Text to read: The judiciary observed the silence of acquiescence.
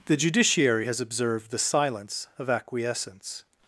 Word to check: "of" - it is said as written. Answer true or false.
true